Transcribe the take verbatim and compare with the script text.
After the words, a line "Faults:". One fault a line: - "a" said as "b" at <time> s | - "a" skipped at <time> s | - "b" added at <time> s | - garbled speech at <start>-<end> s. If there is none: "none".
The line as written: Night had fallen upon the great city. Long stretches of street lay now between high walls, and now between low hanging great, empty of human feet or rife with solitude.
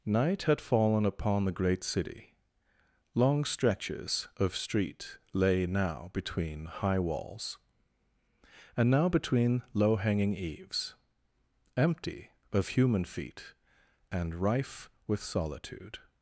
Night had fallen upon the great city. Long stretches of street lay now between high walls, and now between low hanging eaves, empty of human feet and rife with solitude.
Faults:
- "great" said as "eaves" at 10.3 s
- "or" said as "and" at 14.1 s